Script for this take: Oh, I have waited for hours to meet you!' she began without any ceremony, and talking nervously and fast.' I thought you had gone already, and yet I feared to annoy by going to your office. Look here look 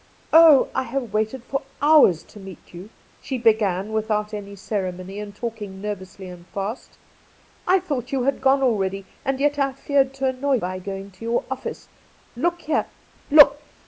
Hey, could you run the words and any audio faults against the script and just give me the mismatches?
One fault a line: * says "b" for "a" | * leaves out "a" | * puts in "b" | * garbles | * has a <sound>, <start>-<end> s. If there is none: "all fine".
all fine